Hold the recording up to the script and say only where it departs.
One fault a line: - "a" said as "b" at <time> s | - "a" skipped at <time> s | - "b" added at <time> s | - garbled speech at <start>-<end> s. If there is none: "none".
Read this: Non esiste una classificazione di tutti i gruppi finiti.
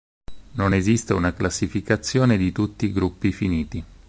none